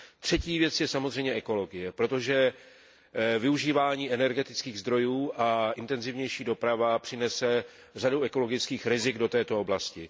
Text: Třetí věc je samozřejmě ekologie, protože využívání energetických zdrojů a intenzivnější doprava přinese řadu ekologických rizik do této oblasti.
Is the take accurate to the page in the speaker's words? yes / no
yes